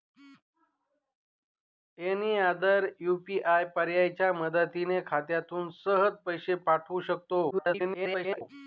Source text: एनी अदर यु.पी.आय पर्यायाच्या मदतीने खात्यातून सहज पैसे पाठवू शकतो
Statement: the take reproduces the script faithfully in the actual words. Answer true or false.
false